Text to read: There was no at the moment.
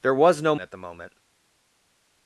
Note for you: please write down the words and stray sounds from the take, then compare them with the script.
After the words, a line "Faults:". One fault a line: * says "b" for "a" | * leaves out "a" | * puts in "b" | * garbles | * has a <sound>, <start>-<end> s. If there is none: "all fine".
There was no at the moment.
Faults:
all fine